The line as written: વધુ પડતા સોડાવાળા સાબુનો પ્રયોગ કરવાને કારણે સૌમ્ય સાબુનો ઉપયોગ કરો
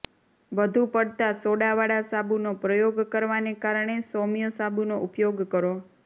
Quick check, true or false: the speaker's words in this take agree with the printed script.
true